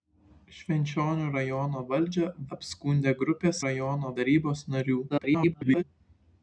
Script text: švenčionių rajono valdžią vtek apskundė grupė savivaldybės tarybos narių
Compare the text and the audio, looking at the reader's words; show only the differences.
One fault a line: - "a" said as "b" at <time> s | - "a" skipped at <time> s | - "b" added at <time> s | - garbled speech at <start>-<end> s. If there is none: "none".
- "vtek" skipped at 2.3 s
- "savivaldybės" said as "rajono" at 3.6 s
- garbled speech at 5.1-5.8 s